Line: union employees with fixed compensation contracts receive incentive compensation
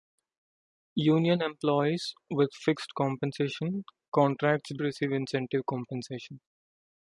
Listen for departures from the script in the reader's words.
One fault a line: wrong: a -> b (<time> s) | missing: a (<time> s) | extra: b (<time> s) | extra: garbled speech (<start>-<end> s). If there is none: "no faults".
no faults